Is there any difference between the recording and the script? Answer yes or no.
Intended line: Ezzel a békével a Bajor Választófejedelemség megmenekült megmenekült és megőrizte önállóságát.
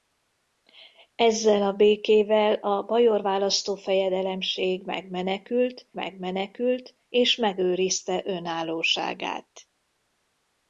no